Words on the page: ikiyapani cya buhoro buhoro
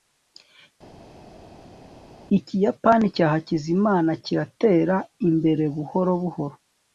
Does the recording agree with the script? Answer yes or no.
no